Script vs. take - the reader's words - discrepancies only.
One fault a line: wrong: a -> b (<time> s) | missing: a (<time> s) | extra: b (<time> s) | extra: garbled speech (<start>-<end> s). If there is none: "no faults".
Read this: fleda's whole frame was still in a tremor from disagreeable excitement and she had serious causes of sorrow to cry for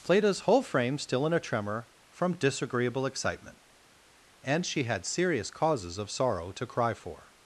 missing: was (1.0 s)